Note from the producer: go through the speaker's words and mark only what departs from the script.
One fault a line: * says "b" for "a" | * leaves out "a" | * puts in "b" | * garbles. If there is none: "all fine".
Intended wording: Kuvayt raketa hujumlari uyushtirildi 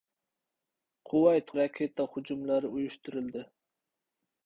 all fine